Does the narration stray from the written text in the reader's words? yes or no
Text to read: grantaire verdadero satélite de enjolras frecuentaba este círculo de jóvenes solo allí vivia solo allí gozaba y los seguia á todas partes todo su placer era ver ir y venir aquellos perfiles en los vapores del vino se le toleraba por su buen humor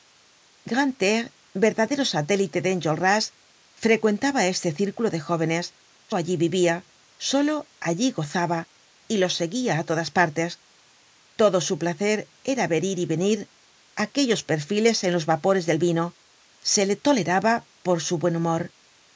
yes